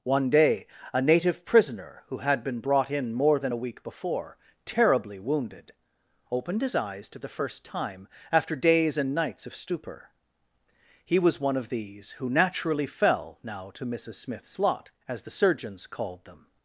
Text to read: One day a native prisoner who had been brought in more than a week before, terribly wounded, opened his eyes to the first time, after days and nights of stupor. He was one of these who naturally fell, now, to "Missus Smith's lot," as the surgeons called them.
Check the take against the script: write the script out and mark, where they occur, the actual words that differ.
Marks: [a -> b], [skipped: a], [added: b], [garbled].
One day a native prisoner who had been brought in more than a week before, terribly wounded, opened his eyes to the first time, after days and nights of stupor. He was one of these who naturally fell, now, to "Missus Smith's lot," as the surgeons called them.